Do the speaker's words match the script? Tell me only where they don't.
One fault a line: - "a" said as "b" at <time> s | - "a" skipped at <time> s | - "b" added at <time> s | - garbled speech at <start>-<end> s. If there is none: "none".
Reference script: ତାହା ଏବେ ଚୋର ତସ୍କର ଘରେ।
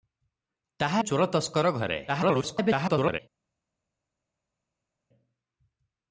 - "ଏବେ" skipped at 1.0 s
- garbled speech at 2.1-3.2 s